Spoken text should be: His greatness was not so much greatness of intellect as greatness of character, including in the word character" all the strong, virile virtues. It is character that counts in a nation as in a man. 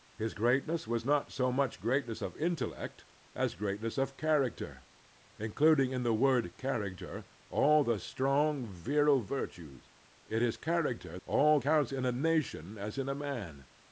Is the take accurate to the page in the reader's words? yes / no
no